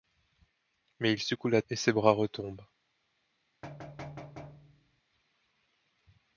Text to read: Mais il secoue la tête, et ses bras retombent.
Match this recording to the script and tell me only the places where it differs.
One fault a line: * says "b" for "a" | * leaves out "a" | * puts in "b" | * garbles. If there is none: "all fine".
* leaves out "tête"